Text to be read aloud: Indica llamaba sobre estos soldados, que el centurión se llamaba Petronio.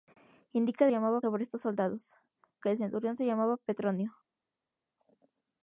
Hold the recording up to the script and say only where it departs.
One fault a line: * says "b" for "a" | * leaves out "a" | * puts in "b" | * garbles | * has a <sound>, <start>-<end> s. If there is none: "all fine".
all fine